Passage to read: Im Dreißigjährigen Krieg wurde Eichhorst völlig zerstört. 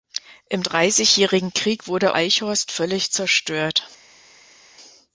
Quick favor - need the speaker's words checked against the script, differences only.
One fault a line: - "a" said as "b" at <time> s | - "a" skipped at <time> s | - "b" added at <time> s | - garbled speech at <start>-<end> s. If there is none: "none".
none